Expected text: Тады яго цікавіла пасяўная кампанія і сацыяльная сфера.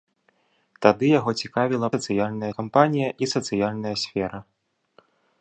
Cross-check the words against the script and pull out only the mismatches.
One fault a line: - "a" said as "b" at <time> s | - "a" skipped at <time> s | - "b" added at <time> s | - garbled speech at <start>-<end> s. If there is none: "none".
- "пасяўная" said as "сацыяльная" at 1.9 s